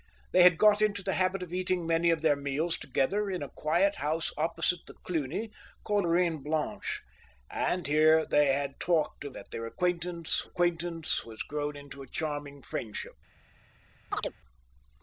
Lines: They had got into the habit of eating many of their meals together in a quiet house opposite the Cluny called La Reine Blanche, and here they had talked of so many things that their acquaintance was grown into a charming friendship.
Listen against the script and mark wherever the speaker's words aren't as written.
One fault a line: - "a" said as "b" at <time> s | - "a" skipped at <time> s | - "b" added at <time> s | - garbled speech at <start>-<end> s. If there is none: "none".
- "La" skipped at 6.1 s
- "so many things" skipped at 9.4 s
- "acquaintance" added at 10.4 s